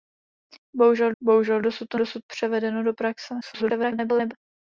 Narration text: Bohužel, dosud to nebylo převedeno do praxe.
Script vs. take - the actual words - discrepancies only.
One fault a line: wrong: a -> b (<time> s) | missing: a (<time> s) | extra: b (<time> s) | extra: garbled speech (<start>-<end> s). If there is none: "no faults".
extra: bohužel (1.2 s)
wrong: nebylo -> dosud (1.9 s)
extra: garbled speech (3.4-4.3 s)